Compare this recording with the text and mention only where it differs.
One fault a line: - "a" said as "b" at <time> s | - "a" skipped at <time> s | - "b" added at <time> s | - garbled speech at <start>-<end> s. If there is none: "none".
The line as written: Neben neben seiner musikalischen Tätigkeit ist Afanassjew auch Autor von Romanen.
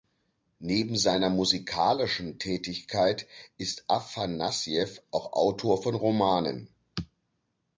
- "neben" skipped at 1.0 s